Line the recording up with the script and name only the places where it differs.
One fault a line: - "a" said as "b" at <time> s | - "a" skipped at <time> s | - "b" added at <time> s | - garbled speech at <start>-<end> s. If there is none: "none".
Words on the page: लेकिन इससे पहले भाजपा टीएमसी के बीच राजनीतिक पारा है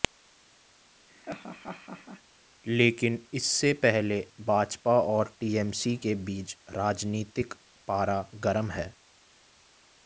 - "और" added at 5.0 s
- "गर्म" added at 8.4 s